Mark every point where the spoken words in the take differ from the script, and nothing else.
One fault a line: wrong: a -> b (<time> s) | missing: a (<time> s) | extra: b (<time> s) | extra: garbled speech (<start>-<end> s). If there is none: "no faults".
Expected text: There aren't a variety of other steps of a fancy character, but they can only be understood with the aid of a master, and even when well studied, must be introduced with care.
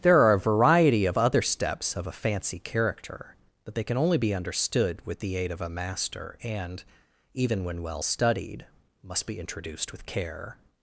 wrong: aren't -> are (0.2 s)